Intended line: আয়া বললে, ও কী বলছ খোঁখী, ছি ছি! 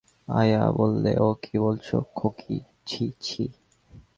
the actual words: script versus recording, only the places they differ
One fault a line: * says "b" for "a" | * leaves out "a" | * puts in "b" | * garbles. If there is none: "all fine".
all fine